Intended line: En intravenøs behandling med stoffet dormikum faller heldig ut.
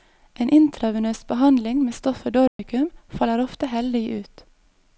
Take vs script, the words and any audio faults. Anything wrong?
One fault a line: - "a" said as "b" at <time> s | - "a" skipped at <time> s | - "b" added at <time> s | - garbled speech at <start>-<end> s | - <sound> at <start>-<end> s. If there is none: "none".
- dropout at 2.5-2.6 s
- "ofte" added at 3.4 s